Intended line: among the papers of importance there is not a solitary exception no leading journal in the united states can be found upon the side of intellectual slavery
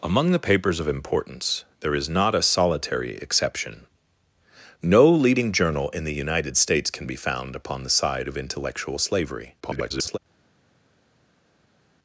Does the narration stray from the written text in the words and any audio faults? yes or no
yes